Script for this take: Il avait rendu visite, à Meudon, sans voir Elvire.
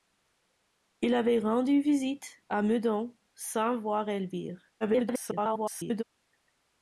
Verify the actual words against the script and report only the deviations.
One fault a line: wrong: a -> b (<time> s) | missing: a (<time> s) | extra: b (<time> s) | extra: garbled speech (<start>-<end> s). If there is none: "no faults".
extra: garbled speech (4.8-6.0 s)